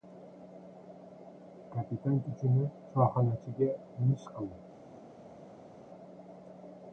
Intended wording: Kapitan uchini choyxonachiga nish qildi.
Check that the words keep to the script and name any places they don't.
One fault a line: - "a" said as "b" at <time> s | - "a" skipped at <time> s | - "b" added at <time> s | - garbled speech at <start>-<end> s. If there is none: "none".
none